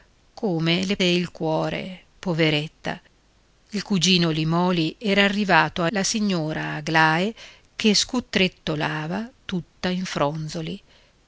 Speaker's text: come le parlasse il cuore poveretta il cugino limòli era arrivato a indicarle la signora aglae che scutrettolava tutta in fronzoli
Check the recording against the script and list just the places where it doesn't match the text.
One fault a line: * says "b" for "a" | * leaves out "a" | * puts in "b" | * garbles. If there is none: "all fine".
* leaves out "parlasse"
* leaves out "indicarle"